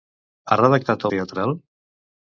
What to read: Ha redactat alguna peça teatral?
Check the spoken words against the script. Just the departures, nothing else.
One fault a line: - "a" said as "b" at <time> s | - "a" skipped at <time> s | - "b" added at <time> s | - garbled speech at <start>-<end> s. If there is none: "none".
- "alguna peça" skipped at 1.1 s